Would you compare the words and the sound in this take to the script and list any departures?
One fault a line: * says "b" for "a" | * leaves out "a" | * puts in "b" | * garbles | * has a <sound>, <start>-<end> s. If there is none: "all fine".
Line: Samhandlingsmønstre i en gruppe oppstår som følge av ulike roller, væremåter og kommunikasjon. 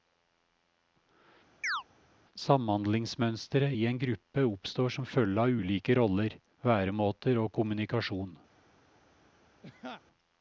* has a chirp, 1.6-1.8 s
* has a laugh, 9.6-10.0 s